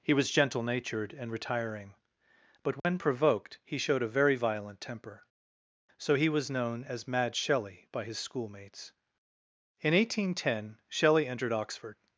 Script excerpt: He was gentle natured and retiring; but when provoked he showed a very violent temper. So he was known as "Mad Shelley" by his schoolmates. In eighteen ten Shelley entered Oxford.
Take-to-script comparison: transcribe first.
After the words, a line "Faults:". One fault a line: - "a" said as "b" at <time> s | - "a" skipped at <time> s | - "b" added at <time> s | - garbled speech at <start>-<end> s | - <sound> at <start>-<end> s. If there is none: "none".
He was gentle natured and retiring; but when provoked he showed a very violent temper. So he was known as "Mad Shelley" by his schoolmates. In eighteen ten Shelley entered Oxford.
Faults:
- dropout at 2.8-2.8 s